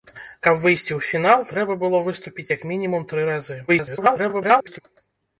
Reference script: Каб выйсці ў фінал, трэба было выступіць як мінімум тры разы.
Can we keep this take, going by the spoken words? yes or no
no